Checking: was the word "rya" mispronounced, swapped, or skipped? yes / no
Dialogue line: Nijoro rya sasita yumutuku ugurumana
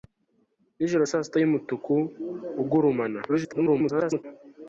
yes